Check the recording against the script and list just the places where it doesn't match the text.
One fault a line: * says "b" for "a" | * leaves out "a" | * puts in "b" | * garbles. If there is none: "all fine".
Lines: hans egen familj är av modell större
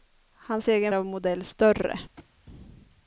* leaves out "familj är"